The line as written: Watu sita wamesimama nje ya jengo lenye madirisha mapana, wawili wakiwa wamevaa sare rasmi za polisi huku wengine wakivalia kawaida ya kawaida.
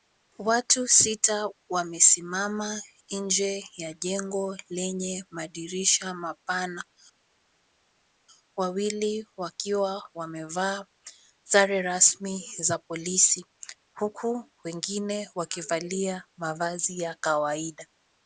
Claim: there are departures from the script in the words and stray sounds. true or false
true